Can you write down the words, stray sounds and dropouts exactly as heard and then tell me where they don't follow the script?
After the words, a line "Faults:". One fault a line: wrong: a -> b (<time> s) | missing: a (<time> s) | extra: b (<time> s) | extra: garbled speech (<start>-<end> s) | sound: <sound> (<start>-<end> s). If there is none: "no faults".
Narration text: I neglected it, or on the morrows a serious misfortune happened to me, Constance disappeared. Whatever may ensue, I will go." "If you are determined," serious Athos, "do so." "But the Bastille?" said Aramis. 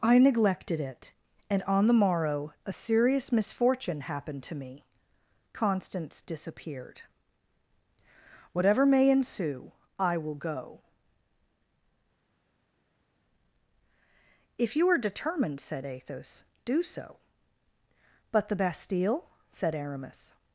I neglected it, and on the morrow a serious misfortune happened to me, Constance disappeared. Whatever may ensue, I will go." "If you are determined," said Athos, "do so." "But the Bastille?" said Aramis.
Faults:
wrong: or -> and (1.5 s)
wrong: morrows -> morrow (1.9 s)
wrong: serious -> said (15.6 s)